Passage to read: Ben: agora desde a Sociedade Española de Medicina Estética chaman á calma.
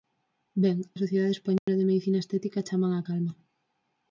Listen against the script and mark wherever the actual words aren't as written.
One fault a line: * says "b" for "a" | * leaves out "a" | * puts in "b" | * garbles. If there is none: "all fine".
* leaves out "agora desde"